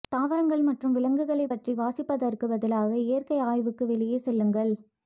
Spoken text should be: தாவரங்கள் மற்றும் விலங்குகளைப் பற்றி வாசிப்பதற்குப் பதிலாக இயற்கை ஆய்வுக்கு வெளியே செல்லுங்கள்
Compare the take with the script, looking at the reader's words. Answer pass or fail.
pass